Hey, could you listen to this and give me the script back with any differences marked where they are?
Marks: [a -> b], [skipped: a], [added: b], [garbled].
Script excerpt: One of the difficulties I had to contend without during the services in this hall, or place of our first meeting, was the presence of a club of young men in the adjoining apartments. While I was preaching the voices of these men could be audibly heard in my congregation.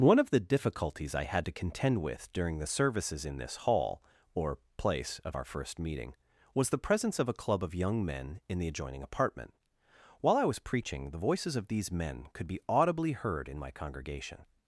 One of the difficulties I had to contend [without -> with] during the services in this hall, or place of our first meeting, was the presence of a club of young men in the adjoining [apartments. -> apartment] While I was preaching the voices of these men could be audibly heard in my congregation.